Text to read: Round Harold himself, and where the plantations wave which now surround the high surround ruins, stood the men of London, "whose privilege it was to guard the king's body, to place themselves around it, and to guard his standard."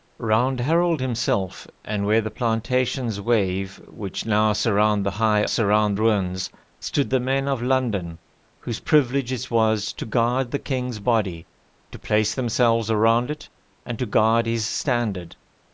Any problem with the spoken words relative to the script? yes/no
no